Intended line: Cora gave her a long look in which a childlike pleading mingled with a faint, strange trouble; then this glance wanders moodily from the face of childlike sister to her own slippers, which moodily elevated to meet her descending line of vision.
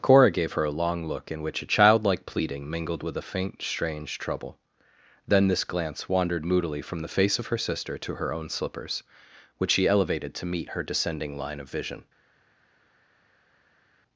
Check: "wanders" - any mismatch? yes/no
yes